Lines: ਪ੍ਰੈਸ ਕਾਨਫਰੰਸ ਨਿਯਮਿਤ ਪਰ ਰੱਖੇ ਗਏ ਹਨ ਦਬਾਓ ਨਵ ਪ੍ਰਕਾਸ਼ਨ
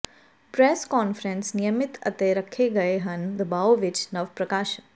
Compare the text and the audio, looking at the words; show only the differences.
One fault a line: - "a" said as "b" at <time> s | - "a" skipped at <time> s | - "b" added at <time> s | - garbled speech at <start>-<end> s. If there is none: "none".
- "ਪਰ" said as "ਅਤੇ" at 2.1 s
- "ਵਿੱਚ" added at 3.7 s